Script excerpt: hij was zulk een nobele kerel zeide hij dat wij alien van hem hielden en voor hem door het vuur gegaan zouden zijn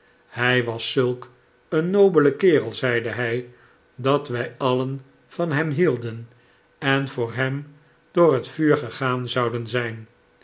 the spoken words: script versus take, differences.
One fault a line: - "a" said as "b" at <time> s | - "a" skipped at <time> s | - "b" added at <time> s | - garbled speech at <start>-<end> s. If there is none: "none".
none